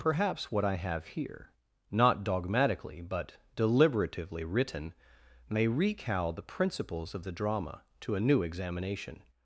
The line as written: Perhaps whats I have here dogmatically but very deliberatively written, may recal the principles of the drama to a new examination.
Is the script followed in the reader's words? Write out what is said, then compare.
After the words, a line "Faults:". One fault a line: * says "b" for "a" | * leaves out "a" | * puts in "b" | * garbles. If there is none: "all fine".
Perhaps what I have here not dogmatically but deliberatively written, may recal the principles of the drama to a new examination.
Faults:
* says "what" for "whats"
* puts in "not"
* leaves out "very"